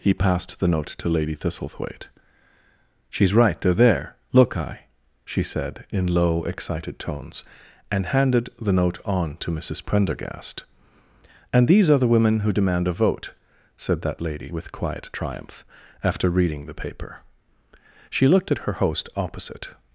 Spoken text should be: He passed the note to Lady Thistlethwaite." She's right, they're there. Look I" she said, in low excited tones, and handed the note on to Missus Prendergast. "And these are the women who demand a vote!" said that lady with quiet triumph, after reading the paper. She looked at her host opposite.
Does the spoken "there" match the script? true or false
true